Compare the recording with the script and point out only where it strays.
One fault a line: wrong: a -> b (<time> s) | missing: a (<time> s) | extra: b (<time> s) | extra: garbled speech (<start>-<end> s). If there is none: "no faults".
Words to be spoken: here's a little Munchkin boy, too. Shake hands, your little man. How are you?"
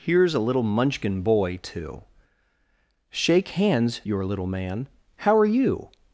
no faults